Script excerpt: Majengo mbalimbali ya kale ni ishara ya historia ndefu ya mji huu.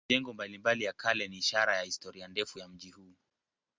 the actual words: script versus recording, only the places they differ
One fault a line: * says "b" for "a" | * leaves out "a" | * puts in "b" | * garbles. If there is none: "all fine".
all fine